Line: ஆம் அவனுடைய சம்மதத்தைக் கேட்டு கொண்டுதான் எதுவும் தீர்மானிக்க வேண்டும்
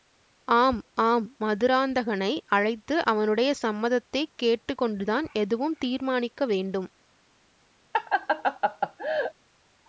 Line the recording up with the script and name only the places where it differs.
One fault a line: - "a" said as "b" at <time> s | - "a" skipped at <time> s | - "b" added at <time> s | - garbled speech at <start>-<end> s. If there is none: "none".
- "ஆம் மதுராந்தகனை அழைத்து" added at 1.0 s